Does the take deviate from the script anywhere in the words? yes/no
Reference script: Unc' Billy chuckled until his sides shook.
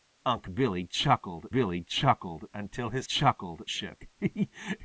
yes